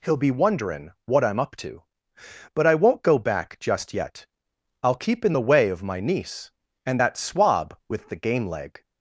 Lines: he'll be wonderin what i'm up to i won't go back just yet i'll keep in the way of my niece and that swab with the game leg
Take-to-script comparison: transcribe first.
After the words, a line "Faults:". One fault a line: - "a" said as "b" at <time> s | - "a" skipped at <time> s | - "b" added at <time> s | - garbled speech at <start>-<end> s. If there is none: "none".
he'll be wonderin what i'm up to but i won't go back just yet i'll keep in the way of my niece and that swab with the game leg
Faults:
- "but" added at 2.5 s